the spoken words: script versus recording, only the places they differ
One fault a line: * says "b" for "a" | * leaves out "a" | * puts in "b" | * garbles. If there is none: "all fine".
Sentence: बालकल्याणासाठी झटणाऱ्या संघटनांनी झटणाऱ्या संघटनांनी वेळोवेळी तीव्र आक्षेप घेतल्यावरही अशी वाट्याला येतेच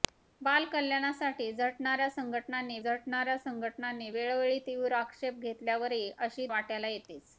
all fine